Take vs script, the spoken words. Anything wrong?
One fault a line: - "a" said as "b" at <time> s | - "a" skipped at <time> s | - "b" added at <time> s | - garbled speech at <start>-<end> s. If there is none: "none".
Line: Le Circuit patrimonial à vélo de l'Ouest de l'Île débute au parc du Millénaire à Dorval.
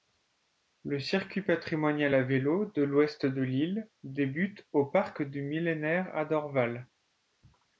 none